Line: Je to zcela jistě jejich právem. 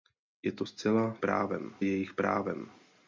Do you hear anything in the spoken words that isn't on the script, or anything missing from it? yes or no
yes